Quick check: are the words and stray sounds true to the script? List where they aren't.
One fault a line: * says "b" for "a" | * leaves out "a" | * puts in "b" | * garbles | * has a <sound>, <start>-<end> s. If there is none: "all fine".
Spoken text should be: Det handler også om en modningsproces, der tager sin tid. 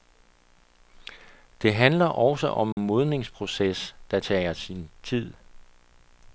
* has a dropout, 2.7-2.8 s